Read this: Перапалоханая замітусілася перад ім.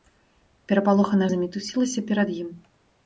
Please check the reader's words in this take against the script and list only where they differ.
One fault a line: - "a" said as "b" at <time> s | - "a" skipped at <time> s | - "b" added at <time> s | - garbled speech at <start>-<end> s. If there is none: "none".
none